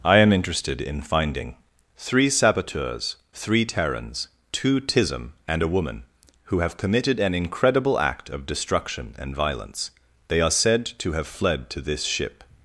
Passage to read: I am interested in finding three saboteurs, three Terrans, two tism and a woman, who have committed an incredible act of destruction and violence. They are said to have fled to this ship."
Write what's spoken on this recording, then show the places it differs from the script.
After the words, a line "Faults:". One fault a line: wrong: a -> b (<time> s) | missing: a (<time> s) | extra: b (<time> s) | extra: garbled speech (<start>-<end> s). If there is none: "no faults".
I am interested in finding three saboteurs, three Terrans, two tism and a woman, who have committed an incredible act of destruction and violence. They are said to have fled to this ship."
Faults:
no faults